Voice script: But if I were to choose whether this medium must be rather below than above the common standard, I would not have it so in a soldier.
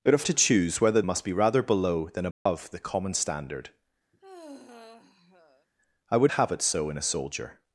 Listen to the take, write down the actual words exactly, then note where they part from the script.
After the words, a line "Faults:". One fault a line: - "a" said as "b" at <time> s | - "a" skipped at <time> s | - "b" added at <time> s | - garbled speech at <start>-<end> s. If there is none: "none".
But if to choose whether must be rather below than above the common standard, I would have it so in a soldier.
Faults:
- "I were" skipped at 0.2 s
- "this medium" skipped at 1.0 s
- "not" skipped at 6.3 s